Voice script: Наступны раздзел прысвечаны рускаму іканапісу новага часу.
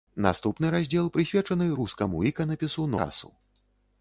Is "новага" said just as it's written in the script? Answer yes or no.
no